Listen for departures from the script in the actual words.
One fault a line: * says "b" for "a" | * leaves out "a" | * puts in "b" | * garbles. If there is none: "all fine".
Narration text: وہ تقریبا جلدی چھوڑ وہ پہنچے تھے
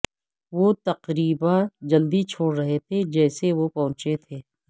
* puts in "رہے تھے جیسے"